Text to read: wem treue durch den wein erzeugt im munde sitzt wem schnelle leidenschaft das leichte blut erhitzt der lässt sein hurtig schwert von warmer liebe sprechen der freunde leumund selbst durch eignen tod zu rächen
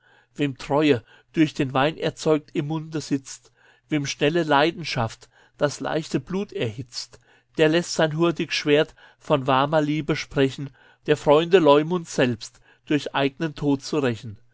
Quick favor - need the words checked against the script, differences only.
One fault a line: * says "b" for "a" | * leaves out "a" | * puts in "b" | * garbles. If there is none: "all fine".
all fine